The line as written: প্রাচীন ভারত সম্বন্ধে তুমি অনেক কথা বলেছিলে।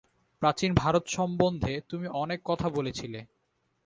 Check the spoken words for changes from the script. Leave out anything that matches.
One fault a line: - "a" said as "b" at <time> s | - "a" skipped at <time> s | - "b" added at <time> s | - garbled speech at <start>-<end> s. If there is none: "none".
none